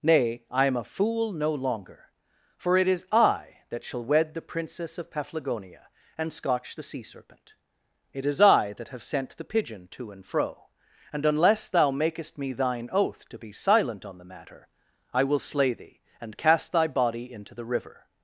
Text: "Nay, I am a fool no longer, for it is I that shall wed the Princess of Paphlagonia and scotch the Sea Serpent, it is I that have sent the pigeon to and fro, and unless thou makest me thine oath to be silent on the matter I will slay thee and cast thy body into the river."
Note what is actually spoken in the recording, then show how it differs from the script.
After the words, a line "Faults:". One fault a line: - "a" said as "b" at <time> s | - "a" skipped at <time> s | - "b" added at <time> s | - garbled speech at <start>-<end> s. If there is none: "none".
"Nay, I am a fool no longer, for it is I that shall wed the Princess of Paphlagonia and scotch the Sea Serpent, it is I that have sent the pigeon to and fro, and unless thou makest me thine oath to be silent on the matter I will slay thee and cast thy body into the river."
Faults:
none